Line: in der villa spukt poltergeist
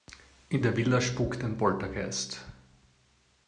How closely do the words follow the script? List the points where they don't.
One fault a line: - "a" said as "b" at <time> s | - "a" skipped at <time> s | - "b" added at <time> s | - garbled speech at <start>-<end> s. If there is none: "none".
- "ein" added at 1.4 s